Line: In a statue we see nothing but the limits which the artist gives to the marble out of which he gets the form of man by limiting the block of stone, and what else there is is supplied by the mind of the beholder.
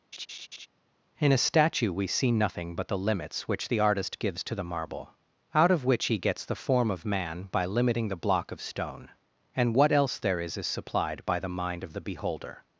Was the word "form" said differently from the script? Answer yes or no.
no